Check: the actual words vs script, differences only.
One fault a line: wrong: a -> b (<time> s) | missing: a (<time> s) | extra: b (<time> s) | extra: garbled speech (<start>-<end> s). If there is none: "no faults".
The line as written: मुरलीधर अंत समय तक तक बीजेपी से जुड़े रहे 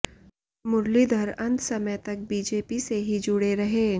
missing: तक (2.2 s)
extra: ही (3.1 s)